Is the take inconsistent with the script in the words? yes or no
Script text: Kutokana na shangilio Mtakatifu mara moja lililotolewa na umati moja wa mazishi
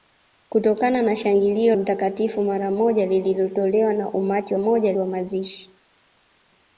no